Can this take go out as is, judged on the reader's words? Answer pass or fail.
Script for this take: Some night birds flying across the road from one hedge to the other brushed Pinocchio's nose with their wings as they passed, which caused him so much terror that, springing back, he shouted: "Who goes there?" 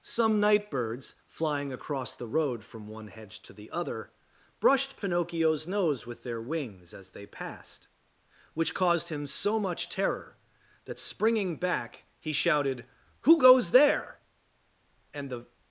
fail